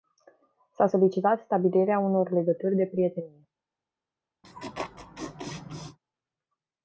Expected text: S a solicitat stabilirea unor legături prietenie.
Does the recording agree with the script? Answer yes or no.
no